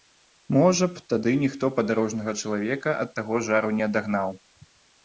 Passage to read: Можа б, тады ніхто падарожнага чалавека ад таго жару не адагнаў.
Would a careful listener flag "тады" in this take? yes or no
no